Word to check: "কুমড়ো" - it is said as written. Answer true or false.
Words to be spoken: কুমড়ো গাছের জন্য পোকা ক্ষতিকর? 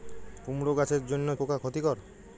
true